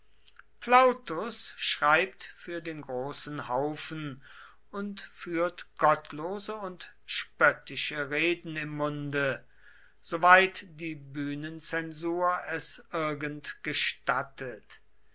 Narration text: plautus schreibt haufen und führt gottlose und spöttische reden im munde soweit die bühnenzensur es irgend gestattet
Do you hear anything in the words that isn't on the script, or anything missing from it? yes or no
yes